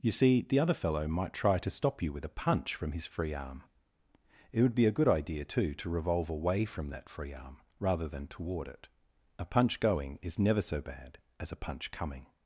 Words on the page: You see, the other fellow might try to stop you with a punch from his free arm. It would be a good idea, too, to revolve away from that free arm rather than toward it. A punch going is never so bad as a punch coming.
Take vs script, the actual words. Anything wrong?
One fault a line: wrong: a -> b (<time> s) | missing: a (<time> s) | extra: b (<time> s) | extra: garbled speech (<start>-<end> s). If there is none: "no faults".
no faults